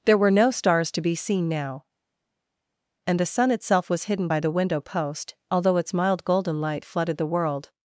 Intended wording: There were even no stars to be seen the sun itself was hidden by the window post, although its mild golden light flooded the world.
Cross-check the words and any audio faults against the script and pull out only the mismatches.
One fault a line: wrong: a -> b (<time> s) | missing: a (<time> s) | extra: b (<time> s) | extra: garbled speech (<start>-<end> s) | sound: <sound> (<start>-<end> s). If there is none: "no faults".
missing: even (0.3 s)
extra: now and (1.5 s)